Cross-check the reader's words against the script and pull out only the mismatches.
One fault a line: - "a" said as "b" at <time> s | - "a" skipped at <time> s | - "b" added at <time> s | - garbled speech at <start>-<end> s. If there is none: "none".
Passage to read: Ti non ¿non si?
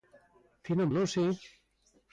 none